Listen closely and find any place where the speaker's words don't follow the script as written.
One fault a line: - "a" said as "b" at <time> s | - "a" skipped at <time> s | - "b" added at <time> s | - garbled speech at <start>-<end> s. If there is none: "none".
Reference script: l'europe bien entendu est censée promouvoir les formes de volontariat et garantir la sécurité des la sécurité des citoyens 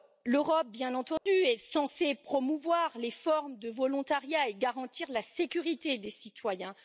- "la sécurité des" skipped at 6.1 s